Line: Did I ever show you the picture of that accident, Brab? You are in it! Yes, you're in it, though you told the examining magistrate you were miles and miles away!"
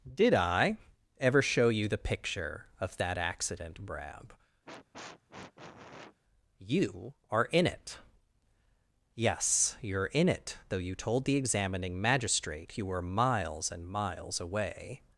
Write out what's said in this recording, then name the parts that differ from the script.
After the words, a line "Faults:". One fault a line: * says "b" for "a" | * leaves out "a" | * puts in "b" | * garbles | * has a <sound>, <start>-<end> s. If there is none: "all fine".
Did I ever show you the picture of that accident, Brab? You are in it! Yes, you're in it, though you told the examining magistrate you were miles and miles away!"
Faults:
* has a sniff, 4.7-6.2 s